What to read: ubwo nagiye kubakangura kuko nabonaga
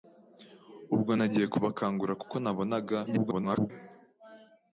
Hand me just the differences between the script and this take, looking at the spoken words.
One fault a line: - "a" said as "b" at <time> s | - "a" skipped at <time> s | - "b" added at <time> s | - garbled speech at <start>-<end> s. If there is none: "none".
- garbled speech at 3.1-3.7 s